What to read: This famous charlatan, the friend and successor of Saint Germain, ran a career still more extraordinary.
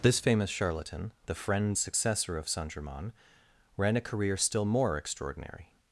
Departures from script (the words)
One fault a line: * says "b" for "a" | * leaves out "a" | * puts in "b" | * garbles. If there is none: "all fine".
* leaves out "and"